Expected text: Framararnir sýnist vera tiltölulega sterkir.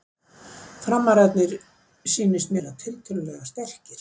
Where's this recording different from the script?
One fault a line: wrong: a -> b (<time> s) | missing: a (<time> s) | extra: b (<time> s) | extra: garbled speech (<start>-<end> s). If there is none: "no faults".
no faults